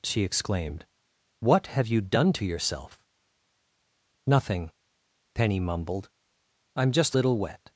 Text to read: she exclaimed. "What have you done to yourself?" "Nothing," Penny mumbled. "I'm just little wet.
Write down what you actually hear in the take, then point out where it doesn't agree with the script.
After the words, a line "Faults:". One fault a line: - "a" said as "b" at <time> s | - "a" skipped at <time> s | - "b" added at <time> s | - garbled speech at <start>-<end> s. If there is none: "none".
she exclaimed. "What have you done to yourself?" "Nothing," Penny mumbled. "I'm just little wet.
Faults:
none